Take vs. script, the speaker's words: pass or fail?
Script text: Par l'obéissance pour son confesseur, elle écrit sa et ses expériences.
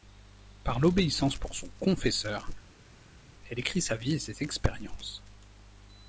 fail